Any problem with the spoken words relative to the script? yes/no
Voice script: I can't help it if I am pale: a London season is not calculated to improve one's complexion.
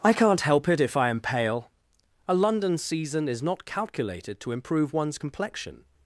no